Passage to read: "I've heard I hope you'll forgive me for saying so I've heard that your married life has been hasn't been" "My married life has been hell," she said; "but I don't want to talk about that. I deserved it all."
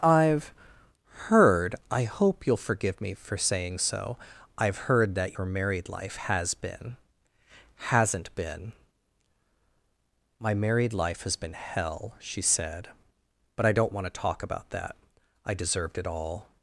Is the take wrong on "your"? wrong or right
right